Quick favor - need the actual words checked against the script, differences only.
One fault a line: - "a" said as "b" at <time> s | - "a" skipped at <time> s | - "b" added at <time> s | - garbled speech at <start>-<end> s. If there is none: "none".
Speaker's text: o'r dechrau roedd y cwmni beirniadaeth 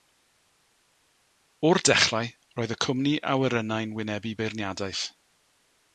- "awyrennau'n wynebu" added at 3.4 s